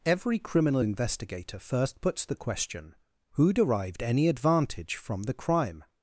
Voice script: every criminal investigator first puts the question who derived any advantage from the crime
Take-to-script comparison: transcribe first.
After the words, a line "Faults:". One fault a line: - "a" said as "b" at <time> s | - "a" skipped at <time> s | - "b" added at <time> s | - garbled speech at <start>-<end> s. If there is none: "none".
every criminal investigator first puts the question who derived any advantage from the crime
Faults:
none